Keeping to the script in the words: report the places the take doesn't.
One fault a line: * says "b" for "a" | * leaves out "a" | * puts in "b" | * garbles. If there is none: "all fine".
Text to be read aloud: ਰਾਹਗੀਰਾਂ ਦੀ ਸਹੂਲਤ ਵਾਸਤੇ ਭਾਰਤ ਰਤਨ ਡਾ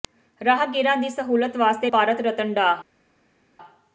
all fine